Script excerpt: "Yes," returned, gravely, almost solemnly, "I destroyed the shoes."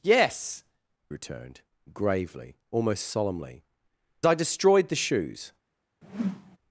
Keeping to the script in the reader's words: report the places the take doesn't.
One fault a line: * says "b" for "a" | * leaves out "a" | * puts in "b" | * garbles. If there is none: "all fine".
all fine